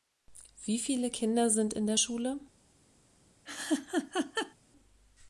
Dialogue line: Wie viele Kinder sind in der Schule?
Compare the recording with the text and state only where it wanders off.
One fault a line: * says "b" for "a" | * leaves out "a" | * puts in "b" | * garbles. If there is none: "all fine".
all fine